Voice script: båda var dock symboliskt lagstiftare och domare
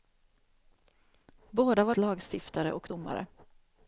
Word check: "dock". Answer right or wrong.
wrong